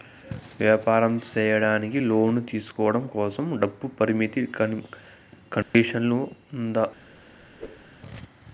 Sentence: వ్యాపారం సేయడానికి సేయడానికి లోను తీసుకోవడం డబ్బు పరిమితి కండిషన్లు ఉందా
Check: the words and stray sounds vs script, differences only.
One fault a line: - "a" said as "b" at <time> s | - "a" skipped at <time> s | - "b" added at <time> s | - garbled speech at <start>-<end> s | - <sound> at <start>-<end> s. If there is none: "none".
- "సేయడానికి" skipped at 2.0 s
- "కోసం" added at 3.1 s
- dropout at 5.6-5.7 s
- whoosh at 7.6-7.9 s